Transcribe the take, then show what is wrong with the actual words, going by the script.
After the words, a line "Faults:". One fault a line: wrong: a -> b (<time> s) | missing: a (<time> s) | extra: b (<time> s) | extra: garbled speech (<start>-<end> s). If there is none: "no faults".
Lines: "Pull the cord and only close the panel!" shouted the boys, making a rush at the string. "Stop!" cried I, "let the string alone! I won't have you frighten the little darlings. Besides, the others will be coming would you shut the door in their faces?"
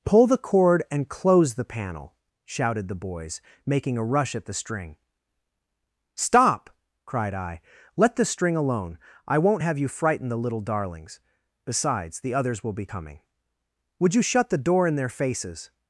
"Pull the cord and close the panel!" shouted the boys, making a rush at the string. "Stop!" cried I, "let the string alone! I won't have you frighten the little darlings. Besides, the others will be coming would you shut the door in their faces?"
Faults:
missing: only (1.1 s)